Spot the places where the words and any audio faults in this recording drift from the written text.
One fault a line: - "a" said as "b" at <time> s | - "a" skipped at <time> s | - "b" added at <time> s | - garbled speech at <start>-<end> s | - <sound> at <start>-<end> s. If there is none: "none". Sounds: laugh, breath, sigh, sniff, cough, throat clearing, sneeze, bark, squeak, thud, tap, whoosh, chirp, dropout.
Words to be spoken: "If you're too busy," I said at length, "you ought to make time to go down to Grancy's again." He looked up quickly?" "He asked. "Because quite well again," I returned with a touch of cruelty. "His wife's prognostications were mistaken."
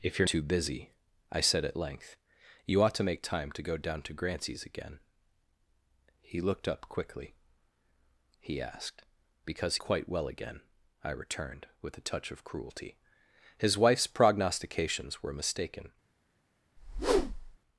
- whoosh at 16.8-17.6 s